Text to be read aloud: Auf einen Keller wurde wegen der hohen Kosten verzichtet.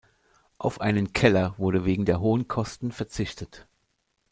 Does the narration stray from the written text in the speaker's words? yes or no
no